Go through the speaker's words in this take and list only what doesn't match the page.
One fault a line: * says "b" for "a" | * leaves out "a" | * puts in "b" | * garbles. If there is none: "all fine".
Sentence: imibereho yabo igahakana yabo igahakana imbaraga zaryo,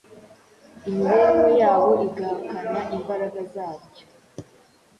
* leaves out "yabo igahakana"